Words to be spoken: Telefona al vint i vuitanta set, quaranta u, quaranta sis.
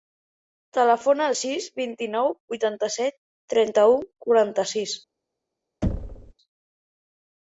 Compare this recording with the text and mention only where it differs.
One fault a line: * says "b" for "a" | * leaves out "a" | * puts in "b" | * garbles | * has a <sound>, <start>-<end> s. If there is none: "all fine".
* puts in "sis"
* puts in "nou"
* says "trenta" for "quaranta"
* has a thud, 5.8-6.3 s